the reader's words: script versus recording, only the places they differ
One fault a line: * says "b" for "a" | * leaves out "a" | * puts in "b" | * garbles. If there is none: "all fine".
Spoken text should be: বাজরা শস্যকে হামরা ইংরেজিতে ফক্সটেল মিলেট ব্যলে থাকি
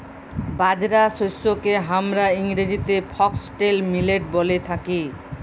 all fine